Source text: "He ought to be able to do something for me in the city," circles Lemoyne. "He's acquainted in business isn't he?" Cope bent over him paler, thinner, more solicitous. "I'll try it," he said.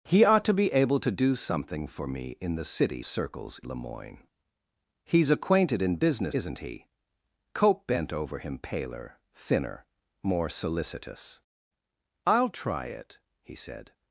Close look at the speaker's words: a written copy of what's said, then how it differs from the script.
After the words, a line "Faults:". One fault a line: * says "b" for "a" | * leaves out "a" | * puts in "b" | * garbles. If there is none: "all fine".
"He ought to be able to do something for me in the city," circles Lemoyne. "He's acquainted in business isn't he?" Cope bent over him paler, thinner, more solicitous. "I'll try it," he said.
Faults:
all fine